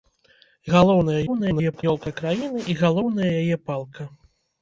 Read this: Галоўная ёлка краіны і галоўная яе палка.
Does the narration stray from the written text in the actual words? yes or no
yes